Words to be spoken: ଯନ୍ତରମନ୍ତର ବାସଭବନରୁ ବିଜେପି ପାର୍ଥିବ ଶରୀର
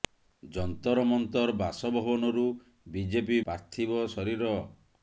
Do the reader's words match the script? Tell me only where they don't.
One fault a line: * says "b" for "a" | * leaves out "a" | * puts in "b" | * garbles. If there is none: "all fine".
all fine